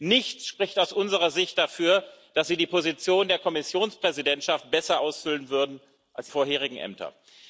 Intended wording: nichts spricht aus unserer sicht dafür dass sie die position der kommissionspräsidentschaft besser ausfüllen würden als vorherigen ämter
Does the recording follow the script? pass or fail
pass